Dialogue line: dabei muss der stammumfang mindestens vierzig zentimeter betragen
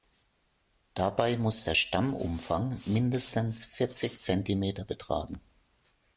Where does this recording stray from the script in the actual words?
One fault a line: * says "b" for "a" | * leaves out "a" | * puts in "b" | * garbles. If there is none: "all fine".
all fine